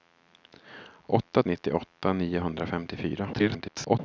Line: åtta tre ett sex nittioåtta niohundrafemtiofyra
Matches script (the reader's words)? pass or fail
fail